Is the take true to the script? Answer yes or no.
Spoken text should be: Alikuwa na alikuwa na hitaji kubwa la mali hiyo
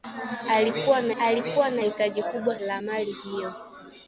yes